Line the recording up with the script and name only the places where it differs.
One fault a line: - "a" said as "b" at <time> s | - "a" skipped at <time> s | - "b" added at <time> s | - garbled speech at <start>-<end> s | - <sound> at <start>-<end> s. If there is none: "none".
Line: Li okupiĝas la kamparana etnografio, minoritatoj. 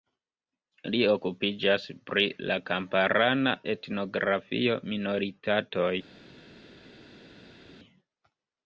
- "pri" added at 2.1 s